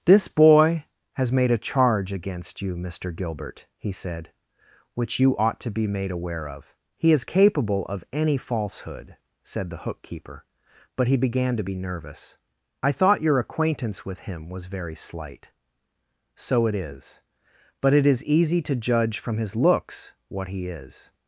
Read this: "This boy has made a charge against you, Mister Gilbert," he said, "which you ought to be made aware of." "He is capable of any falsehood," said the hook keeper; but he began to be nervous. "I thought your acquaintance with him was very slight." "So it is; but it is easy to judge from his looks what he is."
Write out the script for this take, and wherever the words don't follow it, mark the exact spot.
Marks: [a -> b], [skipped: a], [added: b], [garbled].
"This boy has made a charge against you, Mister Gilbert," he said, "which you ought to be made aware of." "He is capable of any falsehood," said the hook keeper; but he began to be nervous. "I thought your acquaintance with him was very slight." "So it is; but it is easy to judge from his looks what he is."